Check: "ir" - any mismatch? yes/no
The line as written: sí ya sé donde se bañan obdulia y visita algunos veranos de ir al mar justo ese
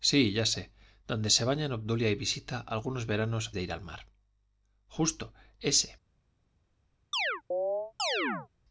no